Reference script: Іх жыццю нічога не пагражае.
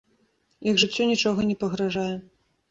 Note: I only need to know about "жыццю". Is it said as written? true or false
true